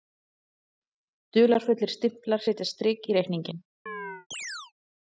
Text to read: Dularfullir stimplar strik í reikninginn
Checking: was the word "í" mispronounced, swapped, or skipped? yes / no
no